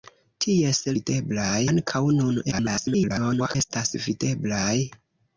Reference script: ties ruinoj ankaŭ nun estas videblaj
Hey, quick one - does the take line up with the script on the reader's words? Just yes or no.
no